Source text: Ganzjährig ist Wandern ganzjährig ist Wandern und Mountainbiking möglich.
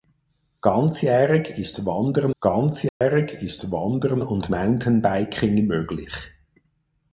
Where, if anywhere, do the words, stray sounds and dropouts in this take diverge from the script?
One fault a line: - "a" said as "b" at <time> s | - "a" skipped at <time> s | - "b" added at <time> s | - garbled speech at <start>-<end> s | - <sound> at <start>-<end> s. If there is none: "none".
- dropout at 2.9-3.0 s